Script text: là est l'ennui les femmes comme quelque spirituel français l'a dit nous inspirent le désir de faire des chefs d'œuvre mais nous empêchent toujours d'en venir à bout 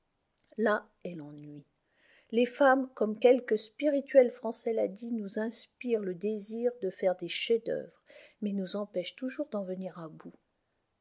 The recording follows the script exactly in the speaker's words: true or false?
true